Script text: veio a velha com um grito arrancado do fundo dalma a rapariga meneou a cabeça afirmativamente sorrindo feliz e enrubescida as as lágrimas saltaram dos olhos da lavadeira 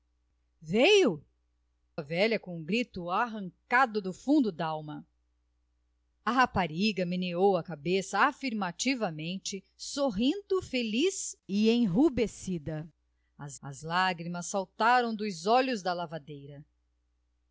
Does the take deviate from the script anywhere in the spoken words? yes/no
no